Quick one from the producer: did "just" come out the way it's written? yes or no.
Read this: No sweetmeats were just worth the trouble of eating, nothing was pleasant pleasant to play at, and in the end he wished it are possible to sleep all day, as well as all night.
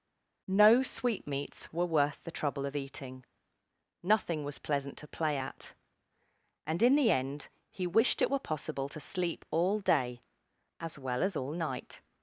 no